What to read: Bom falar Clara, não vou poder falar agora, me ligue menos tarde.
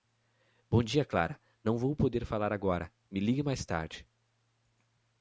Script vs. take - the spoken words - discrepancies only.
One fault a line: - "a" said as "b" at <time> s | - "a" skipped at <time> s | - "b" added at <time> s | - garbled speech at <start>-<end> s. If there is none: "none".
- "falar" said as "dia" at 0.8 s
- "menos" said as "mais" at 3.4 s